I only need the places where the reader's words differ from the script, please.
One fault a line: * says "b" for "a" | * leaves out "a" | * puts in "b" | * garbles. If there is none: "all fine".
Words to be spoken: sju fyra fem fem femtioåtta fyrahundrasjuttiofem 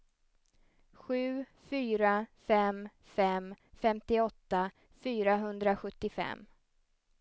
all fine